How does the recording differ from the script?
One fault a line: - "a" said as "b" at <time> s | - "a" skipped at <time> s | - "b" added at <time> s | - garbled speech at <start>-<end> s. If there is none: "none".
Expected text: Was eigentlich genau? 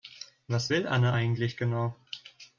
- "will Anne" added at 0.7 s